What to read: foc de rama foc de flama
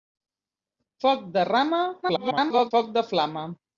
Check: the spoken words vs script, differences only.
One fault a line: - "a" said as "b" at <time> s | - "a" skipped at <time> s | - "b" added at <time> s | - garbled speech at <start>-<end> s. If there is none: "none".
- garbled speech at 2.0-2.7 s